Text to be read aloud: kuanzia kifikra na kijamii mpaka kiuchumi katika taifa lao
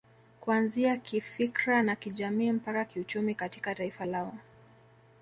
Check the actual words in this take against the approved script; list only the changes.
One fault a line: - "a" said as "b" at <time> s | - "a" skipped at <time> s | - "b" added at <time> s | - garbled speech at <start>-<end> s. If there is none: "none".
none